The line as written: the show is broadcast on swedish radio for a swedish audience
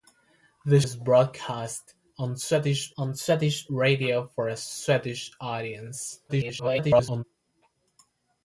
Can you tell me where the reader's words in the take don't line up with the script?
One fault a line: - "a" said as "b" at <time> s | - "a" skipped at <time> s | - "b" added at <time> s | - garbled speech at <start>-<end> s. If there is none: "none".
- "show" skipped at 0.8 s
- "on swedish" added at 3.0 s
- garbled speech at 6.3-7.2 s